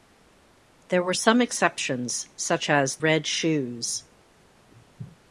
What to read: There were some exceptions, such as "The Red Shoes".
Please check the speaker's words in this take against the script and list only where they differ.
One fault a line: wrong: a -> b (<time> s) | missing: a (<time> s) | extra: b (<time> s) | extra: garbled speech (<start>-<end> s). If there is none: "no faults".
missing: The (3.0 s)